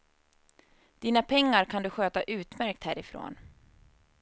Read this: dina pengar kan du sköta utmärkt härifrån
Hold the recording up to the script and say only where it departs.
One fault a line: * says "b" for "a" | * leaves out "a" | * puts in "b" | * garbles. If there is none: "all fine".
all fine